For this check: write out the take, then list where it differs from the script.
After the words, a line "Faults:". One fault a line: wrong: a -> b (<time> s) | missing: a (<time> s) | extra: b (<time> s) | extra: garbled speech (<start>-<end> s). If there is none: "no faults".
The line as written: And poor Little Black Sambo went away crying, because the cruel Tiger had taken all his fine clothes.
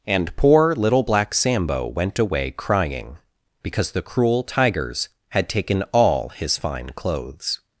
And poor Little Black Sambo went away crying, because the cruel Tigers had taken all his fine clothes.
Faults:
wrong: Tiger -> Tigers (4.4 s)